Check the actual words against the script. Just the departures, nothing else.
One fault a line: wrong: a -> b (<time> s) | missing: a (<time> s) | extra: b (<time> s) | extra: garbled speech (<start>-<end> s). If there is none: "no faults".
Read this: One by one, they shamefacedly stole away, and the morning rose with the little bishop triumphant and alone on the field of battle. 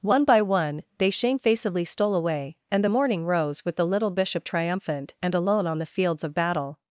wrong: field -> fields (5.9 s)